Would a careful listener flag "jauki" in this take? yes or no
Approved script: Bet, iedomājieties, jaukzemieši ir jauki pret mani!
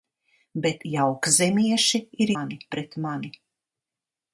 yes